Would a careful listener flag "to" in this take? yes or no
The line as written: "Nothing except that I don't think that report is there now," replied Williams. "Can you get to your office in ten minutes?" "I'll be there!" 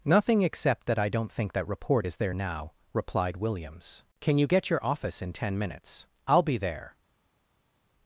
yes